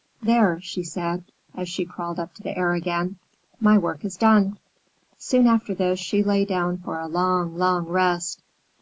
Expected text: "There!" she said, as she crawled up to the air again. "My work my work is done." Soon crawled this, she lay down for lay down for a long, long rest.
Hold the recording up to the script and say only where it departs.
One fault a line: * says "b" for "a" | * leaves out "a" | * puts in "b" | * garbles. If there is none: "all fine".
* leaves out "my work"
* says "after" for "crawled"
* leaves out "lay down for"